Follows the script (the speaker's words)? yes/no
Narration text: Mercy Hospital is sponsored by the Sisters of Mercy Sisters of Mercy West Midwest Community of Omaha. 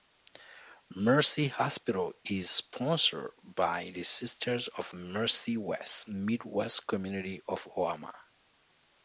no